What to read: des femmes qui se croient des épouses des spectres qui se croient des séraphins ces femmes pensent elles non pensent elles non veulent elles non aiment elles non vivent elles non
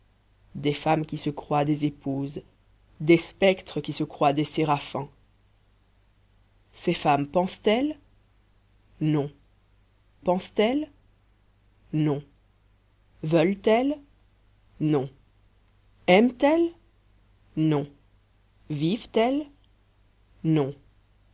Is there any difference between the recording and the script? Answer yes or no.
no